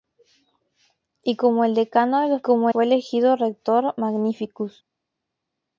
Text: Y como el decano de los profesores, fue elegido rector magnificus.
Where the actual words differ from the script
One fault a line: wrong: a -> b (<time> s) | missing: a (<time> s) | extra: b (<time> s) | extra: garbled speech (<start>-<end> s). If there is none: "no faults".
wrong: profesores -> como (2.4 s)